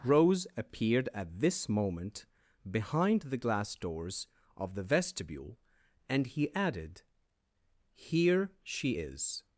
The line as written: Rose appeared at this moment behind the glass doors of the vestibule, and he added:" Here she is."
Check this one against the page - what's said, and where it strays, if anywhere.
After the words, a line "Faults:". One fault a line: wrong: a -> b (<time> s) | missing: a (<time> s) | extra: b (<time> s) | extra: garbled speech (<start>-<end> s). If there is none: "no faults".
Rose appeared at this moment behind the glass doors of the vestibule, and he added:" Here she is."
Faults:
no faults